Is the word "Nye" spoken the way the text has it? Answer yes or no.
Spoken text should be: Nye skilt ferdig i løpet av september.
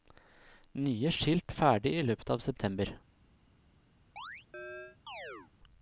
yes